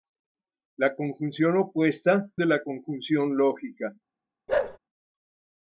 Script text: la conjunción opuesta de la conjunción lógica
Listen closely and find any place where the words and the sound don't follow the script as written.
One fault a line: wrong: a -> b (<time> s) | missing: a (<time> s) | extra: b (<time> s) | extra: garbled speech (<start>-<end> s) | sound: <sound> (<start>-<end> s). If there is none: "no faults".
sound: bark (4.5-4.8 s)